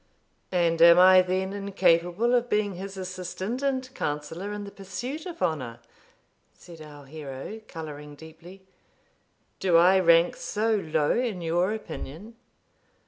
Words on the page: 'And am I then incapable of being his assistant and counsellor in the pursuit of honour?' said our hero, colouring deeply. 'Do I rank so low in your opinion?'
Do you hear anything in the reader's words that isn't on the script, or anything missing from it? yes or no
no